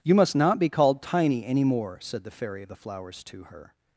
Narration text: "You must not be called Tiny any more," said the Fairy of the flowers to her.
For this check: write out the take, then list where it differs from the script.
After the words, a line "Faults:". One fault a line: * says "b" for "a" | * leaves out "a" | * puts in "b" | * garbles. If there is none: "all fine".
"You must not be called Tiny any more," said the Fairy of the flowers to her.
Faults:
all fine